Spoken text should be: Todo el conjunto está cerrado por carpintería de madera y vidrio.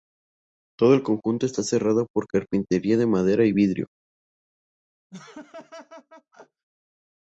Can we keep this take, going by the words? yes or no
yes